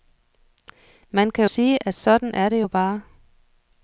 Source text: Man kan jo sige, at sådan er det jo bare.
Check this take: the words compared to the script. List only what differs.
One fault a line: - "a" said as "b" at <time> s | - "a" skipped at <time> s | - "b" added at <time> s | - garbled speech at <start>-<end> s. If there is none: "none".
- "jo" skipped at 1.4 s